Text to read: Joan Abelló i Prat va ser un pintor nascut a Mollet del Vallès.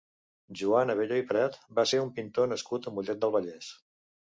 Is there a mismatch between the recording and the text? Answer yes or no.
no